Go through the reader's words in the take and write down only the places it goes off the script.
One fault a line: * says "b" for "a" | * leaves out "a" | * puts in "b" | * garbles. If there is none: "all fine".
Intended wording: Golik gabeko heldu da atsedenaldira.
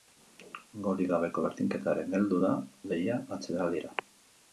* puts in "berdinketaren"
* puts in "lehia"